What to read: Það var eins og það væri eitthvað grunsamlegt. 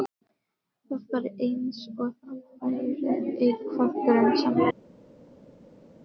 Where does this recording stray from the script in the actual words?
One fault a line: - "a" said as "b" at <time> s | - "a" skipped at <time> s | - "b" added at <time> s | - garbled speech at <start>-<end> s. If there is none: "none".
none